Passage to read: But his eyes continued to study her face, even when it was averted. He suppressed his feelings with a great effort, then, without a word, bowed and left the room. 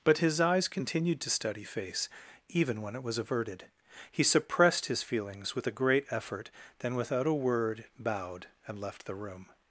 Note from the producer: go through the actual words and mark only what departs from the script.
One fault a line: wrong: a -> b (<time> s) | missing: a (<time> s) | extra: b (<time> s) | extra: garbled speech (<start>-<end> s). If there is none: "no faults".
missing: her (1.6 s)